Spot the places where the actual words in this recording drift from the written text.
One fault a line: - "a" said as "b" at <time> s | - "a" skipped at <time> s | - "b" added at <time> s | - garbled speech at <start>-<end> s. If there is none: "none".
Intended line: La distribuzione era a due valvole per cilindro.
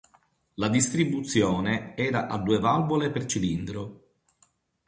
none